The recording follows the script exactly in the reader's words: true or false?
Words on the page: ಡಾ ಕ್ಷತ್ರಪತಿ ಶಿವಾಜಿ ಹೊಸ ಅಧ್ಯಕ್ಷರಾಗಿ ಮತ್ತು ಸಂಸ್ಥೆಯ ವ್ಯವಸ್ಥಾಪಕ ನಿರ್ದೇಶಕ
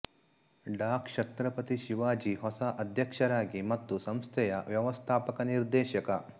true